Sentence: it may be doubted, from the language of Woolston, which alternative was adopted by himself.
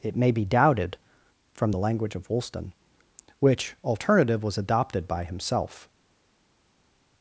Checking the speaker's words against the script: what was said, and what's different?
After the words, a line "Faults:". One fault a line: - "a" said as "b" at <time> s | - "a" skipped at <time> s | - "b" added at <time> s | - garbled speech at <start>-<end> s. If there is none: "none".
it may be doubted, from the language of Woolston, which alternative was adopted by himself.
Faults:
none